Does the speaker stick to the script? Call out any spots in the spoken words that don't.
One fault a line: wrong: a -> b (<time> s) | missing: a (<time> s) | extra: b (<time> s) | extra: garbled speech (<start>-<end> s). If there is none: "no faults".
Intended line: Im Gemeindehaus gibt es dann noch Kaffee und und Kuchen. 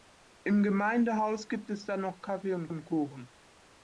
no faults